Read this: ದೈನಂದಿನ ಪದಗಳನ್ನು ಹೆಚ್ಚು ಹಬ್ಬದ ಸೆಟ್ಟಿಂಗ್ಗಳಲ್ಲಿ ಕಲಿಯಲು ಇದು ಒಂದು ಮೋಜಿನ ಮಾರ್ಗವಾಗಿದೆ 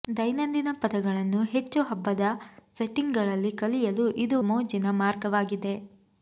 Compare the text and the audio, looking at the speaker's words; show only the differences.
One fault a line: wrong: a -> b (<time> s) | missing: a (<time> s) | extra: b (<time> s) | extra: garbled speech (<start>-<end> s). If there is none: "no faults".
missing: ಒಂದು (4.4 s)